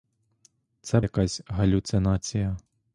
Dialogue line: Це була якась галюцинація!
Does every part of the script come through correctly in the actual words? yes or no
no